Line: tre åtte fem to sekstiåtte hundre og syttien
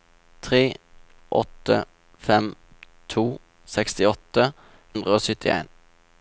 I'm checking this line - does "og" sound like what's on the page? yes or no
yes